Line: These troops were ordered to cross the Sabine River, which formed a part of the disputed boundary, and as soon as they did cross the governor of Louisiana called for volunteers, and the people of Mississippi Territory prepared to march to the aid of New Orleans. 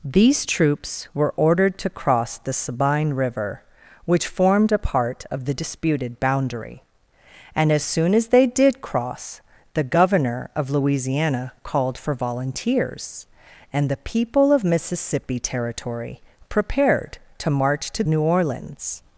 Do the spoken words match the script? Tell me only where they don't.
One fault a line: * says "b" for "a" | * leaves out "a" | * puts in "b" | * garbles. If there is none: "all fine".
* leaves out "the aid of"